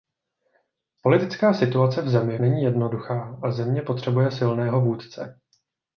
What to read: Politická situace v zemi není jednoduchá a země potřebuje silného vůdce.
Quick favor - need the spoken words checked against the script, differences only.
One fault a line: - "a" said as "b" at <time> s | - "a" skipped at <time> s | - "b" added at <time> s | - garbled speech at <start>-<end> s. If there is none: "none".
none